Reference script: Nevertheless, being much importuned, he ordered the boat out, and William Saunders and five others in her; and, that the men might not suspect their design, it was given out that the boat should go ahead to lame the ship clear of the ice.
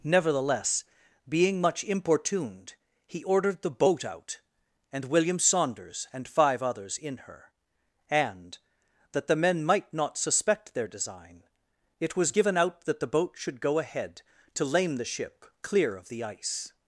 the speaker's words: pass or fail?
pass